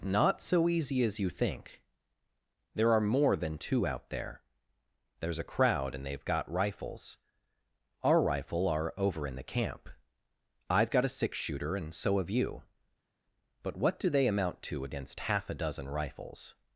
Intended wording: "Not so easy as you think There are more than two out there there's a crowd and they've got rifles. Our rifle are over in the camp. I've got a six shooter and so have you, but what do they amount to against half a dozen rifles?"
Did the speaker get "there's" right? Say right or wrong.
right